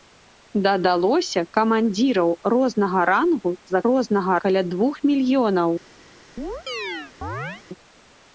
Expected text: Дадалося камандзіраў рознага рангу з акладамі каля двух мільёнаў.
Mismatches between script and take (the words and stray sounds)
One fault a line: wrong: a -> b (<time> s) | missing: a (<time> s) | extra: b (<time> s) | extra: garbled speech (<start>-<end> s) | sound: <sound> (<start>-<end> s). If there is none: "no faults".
wrong: акладамі -> рознага (3.9 s)
sound: chirp (6.4-7.6 s)